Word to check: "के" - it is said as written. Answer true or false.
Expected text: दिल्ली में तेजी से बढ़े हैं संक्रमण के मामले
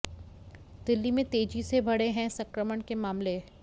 true